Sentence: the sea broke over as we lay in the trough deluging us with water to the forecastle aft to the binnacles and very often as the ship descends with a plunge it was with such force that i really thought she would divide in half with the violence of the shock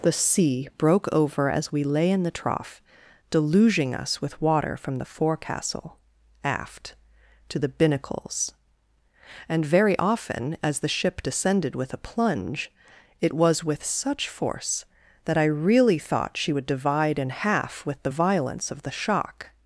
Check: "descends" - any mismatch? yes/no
yes